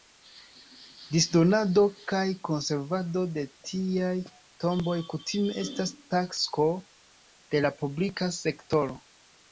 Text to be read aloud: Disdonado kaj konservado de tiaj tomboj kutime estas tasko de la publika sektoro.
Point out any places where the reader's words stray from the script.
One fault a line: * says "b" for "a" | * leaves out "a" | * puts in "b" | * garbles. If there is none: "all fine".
all fine